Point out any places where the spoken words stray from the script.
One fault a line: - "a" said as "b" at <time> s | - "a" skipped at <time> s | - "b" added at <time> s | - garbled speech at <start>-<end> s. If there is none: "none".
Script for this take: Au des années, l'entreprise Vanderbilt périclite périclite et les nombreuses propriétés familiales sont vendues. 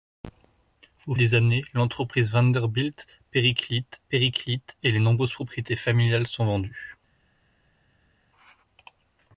none